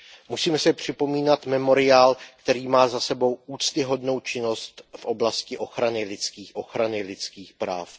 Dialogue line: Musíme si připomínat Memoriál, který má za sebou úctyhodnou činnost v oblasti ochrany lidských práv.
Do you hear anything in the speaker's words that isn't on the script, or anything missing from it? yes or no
yes